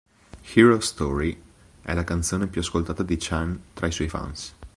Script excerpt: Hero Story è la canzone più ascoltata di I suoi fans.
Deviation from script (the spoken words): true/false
true